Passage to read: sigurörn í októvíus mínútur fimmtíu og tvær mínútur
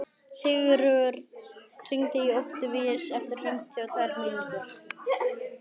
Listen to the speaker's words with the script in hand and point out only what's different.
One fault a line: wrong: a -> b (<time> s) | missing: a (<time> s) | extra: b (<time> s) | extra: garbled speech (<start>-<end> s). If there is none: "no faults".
extra: hringdu (1.9 s)
wrong: mínútur -> eftir (3.2 s)